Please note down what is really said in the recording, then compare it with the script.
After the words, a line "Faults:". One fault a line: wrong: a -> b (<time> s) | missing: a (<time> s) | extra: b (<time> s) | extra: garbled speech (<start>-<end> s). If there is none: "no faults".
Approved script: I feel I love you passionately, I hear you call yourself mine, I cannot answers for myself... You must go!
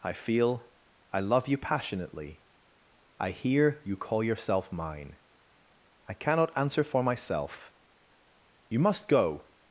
I feel I love you passionately, I hear you call yourself mine, I cannot answer for myself... You must go!
Faults:
wrong: answers -> answer (6.6 s)